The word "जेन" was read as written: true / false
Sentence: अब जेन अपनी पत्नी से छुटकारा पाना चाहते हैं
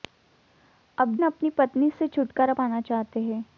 false